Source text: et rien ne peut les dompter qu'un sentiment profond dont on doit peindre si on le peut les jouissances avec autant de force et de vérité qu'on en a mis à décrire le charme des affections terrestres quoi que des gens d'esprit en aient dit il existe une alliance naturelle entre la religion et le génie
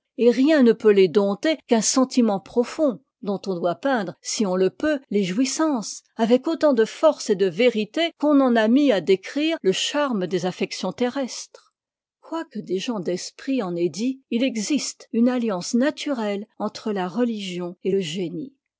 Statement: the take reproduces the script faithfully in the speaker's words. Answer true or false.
true